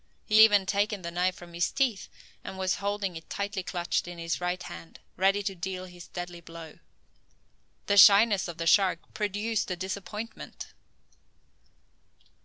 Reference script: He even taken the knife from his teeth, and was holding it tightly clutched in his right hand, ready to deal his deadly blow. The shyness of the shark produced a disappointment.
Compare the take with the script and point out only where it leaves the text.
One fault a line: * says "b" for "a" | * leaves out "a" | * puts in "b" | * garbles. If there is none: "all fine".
all fine